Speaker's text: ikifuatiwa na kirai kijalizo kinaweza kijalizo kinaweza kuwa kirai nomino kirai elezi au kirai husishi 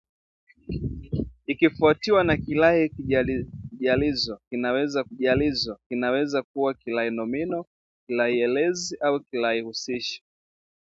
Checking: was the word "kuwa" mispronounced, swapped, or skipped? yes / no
no